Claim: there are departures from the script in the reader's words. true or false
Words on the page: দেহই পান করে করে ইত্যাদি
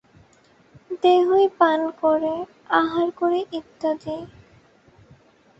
true